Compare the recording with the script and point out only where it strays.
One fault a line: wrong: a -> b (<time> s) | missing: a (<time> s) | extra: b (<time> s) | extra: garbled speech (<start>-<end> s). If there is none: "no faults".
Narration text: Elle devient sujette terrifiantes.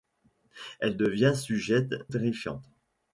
no faults